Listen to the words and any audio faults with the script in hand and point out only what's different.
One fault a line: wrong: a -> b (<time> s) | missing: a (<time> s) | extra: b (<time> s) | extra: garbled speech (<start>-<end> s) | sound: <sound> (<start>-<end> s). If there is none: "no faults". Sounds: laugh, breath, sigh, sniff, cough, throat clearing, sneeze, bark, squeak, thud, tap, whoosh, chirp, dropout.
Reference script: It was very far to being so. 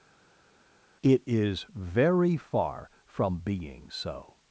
wrong: was -> is (1.3 s)
wrong: to -> from (3.1 s)